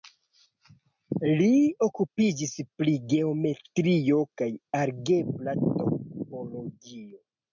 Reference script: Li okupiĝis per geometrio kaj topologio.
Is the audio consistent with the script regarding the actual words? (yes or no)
no